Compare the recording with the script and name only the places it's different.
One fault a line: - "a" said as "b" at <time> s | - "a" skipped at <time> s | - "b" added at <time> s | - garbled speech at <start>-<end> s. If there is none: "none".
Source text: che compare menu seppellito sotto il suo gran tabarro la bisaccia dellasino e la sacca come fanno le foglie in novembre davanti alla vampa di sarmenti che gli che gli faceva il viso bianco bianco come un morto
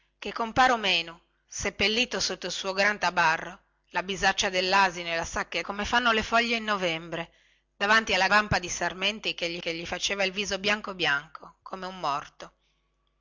none